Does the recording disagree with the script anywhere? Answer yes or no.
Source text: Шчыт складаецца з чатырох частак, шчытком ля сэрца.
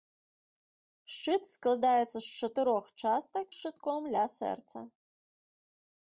no